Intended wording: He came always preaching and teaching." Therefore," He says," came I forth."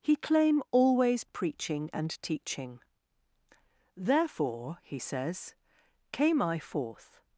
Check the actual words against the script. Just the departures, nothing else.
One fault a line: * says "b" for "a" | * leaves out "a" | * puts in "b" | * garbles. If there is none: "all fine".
* says "claim" for "came"